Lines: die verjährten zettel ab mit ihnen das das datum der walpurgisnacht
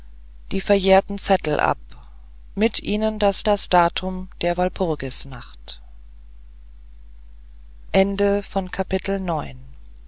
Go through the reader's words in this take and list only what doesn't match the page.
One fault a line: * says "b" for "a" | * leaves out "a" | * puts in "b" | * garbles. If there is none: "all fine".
all fine